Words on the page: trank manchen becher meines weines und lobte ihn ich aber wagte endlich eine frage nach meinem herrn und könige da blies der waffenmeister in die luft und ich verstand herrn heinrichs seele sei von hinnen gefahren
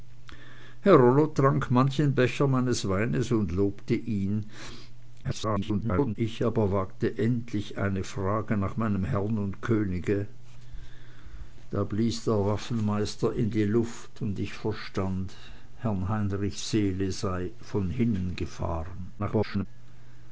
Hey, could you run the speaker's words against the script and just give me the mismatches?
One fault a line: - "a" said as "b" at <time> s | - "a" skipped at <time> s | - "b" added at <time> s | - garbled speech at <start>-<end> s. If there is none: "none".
- garbled speech at 5.2-6.2 s
- garbled speech at 19.2-19.7 s